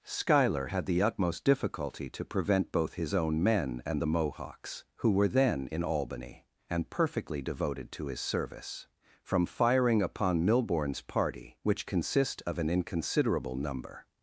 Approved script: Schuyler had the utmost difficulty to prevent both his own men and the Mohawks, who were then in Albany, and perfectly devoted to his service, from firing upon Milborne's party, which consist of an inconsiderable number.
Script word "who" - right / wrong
right